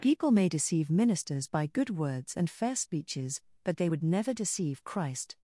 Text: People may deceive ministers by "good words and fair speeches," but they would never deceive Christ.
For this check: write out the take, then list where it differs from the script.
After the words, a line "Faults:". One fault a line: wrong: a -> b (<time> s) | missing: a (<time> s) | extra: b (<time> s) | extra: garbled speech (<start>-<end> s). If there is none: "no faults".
People may deceive ministers by "good words and fair speeches," but they would never deceive Christ.
Faults:
no faults